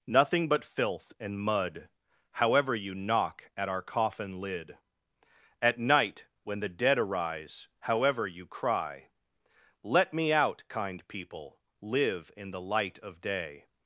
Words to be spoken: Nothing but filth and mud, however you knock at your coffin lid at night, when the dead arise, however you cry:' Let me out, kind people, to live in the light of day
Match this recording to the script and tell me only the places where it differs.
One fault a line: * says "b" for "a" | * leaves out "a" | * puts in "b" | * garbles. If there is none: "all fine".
* says "our" for "your"
* leaves out "to"